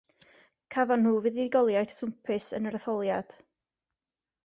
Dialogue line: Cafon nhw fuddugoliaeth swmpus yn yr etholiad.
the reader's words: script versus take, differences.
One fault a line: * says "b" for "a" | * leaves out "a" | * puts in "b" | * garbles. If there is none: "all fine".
all fine